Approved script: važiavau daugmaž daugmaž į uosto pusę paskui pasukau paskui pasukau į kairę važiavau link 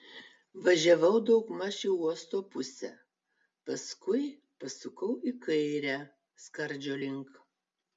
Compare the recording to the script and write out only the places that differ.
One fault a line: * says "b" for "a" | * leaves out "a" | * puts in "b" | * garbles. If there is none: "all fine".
* leaves out "daugmaž"
* leaves out "paskui pasukau"
* says "skardžio" for "važiavau"